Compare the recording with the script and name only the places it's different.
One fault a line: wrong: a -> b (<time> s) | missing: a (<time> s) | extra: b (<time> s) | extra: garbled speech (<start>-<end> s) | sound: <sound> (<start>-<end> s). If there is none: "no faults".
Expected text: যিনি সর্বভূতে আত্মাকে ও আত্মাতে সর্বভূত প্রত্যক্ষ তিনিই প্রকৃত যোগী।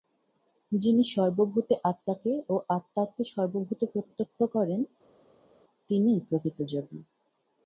extra: করেন (4.5 s)